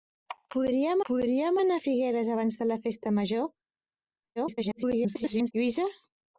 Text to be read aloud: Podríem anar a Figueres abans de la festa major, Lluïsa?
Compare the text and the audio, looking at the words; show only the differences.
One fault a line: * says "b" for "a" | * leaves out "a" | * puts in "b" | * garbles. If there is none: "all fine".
* puts in "podríem"
* garbles